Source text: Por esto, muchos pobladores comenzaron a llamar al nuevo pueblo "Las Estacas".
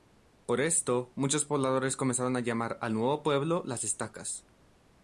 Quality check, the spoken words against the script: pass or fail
pass